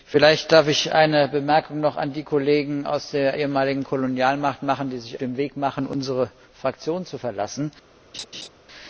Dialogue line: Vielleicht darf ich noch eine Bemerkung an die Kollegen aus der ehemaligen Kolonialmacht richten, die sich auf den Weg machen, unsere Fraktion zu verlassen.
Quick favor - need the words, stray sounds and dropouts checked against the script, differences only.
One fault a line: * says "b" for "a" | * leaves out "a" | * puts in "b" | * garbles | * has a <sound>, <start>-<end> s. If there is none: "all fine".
* leaves out "auf"
* has a laugh, 8.1-8.5 s